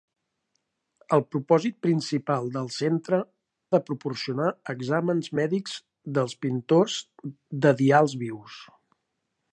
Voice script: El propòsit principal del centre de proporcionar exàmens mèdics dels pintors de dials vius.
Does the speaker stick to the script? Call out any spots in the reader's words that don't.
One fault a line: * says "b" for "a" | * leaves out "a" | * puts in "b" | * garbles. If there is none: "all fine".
all fine